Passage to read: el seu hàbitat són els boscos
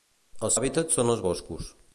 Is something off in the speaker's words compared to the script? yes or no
yes